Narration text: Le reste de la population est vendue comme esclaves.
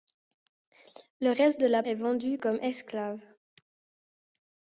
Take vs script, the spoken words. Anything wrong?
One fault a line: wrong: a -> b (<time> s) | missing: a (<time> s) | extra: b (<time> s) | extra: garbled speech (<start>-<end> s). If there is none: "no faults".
missing: population (1.8 s)